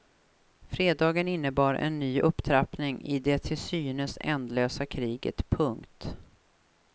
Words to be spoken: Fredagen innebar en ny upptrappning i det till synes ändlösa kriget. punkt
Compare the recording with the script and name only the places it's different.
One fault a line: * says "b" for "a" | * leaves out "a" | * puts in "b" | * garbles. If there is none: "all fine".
all fine